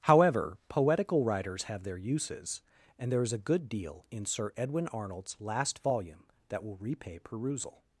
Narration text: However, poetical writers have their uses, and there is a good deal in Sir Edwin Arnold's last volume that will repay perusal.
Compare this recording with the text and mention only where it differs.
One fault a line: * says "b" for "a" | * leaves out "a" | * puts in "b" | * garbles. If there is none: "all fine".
all fine